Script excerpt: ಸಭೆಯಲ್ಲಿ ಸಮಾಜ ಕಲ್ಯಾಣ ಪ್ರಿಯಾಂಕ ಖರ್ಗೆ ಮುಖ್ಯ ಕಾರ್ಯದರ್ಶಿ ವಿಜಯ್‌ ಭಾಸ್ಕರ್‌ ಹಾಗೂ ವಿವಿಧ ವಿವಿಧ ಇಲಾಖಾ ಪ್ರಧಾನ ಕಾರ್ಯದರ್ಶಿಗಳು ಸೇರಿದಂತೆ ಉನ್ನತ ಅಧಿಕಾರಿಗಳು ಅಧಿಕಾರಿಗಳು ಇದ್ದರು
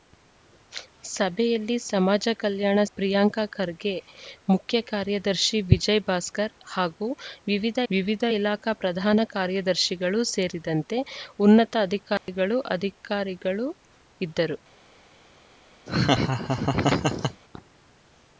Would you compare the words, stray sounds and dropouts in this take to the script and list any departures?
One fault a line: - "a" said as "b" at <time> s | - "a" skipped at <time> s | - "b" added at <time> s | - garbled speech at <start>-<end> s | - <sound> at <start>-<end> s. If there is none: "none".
- dropout at 12.2-12.3 s
- laugh at 15.9-17.4 s